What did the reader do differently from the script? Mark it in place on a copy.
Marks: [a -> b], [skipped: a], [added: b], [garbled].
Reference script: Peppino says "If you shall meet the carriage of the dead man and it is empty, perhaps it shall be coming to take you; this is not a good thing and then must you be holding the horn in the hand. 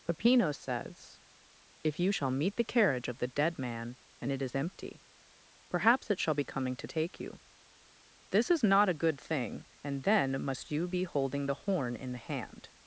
Peppino says "If you shall meet the carriage of the dead man and it is empty, perhaps it shall be coming to take you; this is not a good thing and then must you be holding the horn in the hand.